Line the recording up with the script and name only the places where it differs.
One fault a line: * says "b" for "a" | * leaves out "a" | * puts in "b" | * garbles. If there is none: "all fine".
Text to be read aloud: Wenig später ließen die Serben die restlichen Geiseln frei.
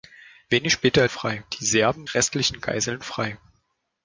* says "frei" for "ließen"
* leaves out "die"